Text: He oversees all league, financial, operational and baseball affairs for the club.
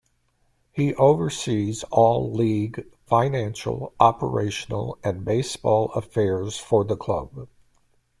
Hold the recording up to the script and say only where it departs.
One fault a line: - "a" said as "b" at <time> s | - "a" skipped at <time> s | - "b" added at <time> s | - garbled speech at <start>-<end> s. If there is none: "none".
none